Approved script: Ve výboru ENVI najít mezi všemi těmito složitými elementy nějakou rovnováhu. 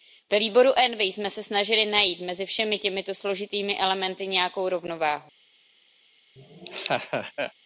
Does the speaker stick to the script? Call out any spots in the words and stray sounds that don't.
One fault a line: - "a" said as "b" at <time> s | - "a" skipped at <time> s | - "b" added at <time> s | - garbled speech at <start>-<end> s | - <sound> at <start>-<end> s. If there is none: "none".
- "jsme se snažili" added at 1.0 s
- laugh at 6.4-7.5 s